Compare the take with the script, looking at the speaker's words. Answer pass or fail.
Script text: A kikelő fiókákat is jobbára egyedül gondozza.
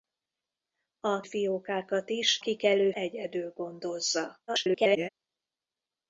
fail